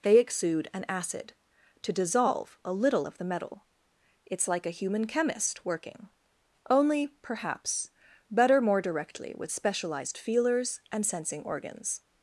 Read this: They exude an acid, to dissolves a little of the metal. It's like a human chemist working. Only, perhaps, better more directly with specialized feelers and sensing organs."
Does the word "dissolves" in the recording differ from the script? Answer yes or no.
yes